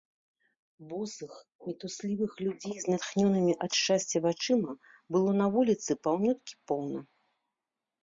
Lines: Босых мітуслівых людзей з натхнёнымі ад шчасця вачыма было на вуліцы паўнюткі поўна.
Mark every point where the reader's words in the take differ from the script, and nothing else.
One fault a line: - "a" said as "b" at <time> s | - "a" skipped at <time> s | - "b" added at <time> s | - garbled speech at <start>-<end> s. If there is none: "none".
none